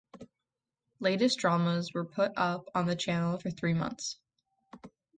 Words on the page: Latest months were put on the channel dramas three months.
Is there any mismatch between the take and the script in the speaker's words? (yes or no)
yes